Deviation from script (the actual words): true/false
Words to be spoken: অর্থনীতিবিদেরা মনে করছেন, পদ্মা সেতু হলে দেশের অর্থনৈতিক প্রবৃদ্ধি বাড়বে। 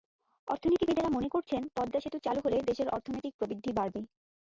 true